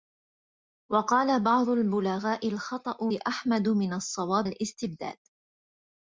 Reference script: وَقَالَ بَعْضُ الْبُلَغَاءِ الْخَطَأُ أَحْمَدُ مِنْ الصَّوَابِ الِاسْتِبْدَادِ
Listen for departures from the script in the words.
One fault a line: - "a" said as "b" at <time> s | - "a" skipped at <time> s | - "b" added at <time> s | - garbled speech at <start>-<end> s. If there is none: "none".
none